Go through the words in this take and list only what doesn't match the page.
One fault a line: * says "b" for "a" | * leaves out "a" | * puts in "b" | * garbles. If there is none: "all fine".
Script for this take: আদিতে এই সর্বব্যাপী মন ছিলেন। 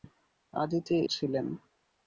* leaves out "এই সর্বব্যাপী মন"